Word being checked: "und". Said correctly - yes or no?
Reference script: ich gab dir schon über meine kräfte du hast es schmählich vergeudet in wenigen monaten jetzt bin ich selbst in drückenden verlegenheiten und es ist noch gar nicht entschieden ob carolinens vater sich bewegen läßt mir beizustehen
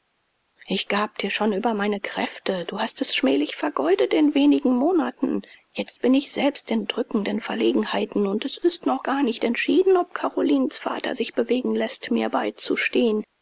yes